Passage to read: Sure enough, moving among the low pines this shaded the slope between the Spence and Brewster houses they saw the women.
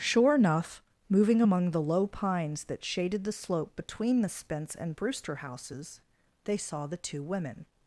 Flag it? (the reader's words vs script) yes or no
yes